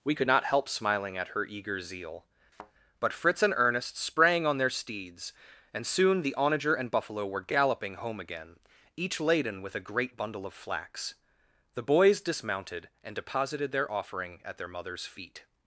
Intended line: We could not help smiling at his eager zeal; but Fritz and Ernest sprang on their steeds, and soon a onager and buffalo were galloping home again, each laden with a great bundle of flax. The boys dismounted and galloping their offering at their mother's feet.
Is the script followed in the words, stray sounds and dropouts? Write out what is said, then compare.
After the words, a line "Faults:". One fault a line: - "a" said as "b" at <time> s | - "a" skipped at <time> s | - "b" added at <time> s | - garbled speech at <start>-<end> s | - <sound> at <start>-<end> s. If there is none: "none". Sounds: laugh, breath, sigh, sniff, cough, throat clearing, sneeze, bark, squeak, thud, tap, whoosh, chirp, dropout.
We could not help smiling at her eager zeal; but Fritz and Ernest sprang on their steeds, and soon the onager and buffalo were galloping home again, each laden with a great bundle of flax. The boys dismounted and deposited their offering at their mother's feet.
Faults:
- "his" said as "her" at 1.3 s
- thud at 2.5-2.7 s
- "a" said as "the" at 6.2 s
- "galloping" said as "deposited" at 13.2 s